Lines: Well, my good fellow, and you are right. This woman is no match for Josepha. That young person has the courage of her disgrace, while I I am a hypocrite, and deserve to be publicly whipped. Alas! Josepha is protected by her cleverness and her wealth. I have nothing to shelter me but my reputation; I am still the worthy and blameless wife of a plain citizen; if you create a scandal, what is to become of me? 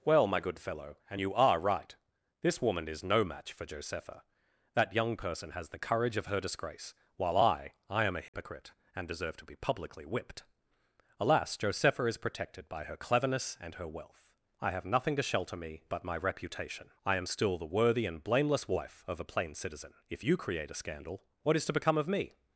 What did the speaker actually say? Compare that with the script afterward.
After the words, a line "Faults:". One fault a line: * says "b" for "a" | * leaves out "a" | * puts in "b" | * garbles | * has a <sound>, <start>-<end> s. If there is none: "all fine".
Well, my good fellow, and you are right. This woman is no match for Josepha. That young person has the courage of her disgrace, while I I am a hypocrite, and deserve to be publicly whipped. Alas! Josepha is protected by her cleverness and her wealth. I have nothing to shelter me but my reputation; I am still the worthy and blameless wife of a plain citizen; if you create a scandal, what is to become of me?
Faults:
* has a dropout, 8.3-8.3 s